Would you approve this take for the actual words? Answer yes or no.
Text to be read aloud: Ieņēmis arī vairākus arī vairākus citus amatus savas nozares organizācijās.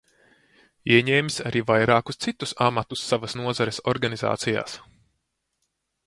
no